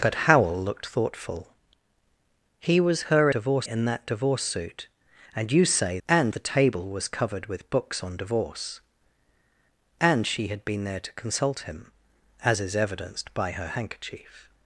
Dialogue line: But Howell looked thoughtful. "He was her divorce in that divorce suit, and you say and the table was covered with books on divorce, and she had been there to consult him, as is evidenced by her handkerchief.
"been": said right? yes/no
yes